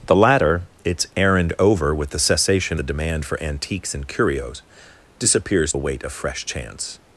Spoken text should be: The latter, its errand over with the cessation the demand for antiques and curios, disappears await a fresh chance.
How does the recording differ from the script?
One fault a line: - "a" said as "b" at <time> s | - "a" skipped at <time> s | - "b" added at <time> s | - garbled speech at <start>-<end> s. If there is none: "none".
none